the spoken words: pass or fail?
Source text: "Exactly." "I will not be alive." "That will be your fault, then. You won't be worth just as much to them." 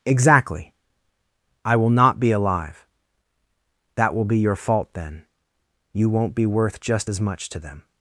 pass